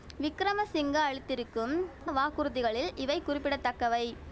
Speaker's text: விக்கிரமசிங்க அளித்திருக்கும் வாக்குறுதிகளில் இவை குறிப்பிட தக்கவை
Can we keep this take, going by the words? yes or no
yes